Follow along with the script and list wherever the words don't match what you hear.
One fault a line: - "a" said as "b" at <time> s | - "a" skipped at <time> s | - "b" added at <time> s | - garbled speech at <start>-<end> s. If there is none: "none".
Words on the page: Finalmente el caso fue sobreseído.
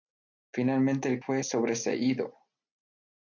- "caso" skipped at 1.2 s